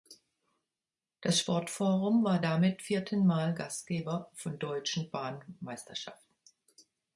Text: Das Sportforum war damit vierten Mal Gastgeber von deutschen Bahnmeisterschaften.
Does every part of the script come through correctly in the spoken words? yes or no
yes